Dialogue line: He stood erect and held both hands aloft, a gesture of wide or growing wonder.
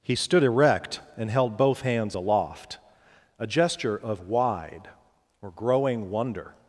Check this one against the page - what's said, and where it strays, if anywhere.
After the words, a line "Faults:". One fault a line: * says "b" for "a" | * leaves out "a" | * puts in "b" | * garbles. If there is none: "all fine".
He stood erect and held both hands aloft, a gesture of wide or growing wonder.
Faults:
all fine